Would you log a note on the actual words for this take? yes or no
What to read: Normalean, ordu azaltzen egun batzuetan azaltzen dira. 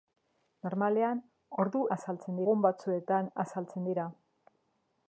no